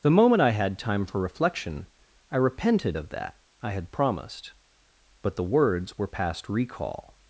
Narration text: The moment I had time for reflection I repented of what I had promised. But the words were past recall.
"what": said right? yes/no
no